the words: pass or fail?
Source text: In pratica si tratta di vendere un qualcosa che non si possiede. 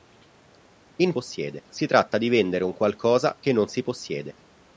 fail